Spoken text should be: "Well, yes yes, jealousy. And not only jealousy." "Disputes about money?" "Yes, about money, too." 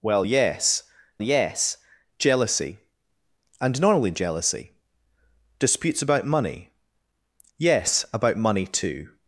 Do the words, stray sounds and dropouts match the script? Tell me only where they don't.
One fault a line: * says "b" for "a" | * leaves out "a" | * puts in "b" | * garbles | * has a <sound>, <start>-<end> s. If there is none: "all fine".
all fine